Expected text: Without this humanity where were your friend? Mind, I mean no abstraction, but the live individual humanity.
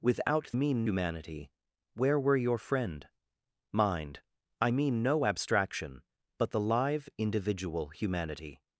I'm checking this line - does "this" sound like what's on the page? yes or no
no